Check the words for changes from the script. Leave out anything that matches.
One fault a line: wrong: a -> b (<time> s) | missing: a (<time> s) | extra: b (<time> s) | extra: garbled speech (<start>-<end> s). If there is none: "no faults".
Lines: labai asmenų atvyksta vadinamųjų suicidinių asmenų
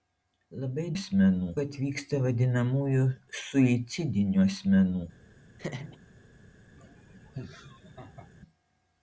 no faults